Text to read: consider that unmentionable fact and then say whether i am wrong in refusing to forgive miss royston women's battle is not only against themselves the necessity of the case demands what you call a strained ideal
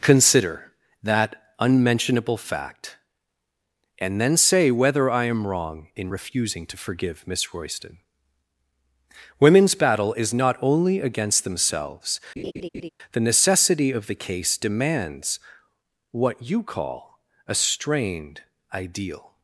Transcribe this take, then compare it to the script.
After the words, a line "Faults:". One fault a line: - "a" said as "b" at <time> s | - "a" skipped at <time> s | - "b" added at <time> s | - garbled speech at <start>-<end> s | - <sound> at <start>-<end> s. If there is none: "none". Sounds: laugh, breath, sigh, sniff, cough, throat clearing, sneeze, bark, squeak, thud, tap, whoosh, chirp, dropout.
consider that unmentionable fact and then say whether i am wrong in refusing to forgive miss royston women's battle is not only against themselves the necessity of the case demands what you call a strained ideal
Faults:
- laugh at 12.4-12.9 s